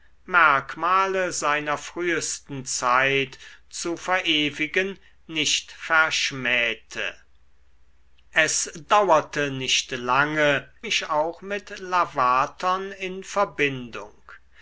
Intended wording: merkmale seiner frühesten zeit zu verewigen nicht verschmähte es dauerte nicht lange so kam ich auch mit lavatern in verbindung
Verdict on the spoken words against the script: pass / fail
fail